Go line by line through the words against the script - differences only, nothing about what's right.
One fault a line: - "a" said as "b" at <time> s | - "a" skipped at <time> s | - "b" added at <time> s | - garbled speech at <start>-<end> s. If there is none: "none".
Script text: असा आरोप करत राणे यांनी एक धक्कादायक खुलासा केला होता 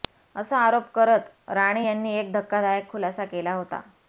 none